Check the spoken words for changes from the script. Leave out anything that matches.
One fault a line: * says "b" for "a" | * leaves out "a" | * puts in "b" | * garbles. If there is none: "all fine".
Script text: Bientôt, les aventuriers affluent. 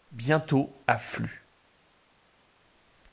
* leaves out "les aventuriers"